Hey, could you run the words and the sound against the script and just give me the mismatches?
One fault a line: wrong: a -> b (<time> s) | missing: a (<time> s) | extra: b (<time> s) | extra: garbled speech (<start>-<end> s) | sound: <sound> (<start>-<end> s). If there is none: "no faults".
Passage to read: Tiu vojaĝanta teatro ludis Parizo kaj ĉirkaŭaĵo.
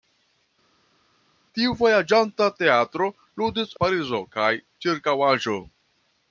no faults